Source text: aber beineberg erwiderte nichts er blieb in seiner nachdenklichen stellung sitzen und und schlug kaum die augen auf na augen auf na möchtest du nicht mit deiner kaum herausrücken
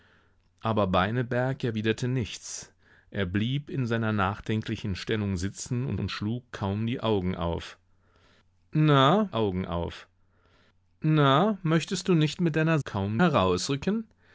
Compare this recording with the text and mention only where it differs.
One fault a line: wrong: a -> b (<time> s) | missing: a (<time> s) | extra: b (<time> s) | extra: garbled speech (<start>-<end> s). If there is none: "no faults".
no faults